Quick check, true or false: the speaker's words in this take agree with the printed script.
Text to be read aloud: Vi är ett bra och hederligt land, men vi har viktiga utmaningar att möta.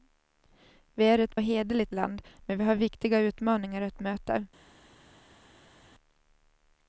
false